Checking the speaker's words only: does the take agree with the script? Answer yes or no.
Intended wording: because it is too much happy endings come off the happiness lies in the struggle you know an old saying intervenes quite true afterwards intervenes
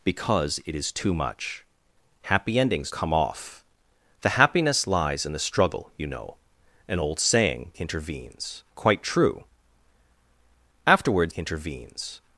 yes